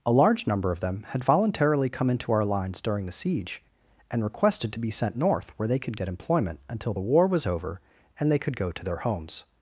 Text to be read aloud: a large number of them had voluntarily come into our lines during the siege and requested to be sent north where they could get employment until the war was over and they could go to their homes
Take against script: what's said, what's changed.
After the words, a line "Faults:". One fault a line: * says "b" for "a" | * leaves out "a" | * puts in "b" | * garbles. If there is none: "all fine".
a large number of them had voluntarily come into our lines during the siege and requested to be sent north where they could get employment until the war was over and they could go to their homes
Faults:
all fine